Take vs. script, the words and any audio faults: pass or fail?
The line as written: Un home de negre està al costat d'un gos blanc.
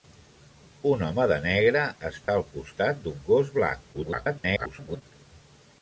fail